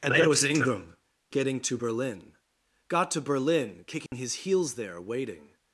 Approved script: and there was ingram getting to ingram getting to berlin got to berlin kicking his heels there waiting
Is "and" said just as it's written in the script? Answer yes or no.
yes